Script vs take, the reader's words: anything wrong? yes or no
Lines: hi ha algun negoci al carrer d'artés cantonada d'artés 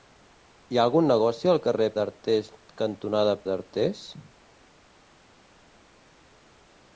no